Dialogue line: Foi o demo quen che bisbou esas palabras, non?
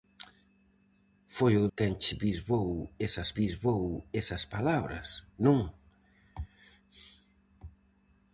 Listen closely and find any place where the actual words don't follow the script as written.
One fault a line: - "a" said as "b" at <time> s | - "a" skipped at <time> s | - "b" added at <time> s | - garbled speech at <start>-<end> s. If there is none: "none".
- "demo" skipped at 1.6 s
- "bisbou esas" added at 3.4 s